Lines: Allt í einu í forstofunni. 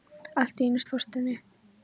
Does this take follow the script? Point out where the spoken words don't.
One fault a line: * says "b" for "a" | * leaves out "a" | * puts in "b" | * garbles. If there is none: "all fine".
all fine